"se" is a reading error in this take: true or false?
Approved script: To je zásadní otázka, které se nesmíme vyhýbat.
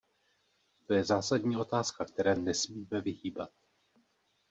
true